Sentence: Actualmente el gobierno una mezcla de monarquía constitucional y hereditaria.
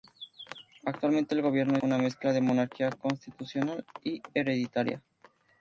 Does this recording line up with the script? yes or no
yes